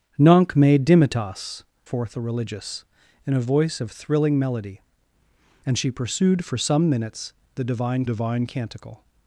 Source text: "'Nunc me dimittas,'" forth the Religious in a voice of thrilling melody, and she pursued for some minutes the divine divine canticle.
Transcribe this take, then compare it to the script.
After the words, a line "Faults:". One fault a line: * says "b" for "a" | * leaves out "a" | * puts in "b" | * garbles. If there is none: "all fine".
"'Nunc me dimittas,'" forth the Religious in a voice of thrilling melody, and she pursued for some minutes the divine divine canticle.
Faults:
all fine